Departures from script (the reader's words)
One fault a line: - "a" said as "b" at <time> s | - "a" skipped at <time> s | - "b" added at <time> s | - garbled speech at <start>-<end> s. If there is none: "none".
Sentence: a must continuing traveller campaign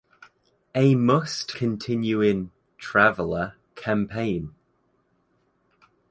none